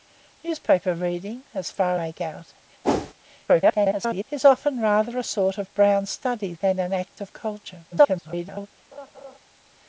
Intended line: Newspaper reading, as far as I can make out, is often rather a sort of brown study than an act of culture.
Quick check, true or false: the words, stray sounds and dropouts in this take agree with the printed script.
false